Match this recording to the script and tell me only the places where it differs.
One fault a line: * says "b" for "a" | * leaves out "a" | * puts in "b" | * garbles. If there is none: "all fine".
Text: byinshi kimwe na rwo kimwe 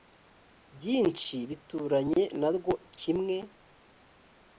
* says "bituranye" for "kimwe"